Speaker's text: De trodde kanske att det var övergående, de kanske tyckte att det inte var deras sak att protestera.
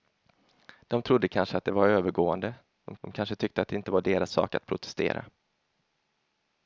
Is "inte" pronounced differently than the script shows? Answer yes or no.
no